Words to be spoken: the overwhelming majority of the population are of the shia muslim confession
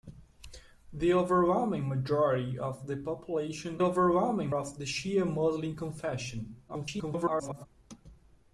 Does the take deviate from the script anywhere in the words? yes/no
yes